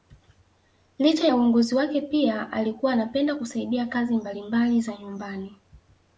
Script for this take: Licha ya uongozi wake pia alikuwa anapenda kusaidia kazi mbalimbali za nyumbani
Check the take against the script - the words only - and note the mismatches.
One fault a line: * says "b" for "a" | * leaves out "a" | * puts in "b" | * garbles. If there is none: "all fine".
all fine